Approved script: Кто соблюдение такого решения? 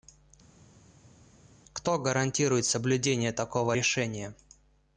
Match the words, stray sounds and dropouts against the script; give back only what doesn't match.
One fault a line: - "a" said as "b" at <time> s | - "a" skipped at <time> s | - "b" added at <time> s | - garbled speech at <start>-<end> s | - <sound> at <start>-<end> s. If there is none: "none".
- "гарантирует" added at 2.0 s